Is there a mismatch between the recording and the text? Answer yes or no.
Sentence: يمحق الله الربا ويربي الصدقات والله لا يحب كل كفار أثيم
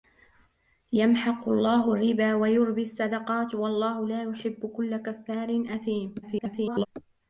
yes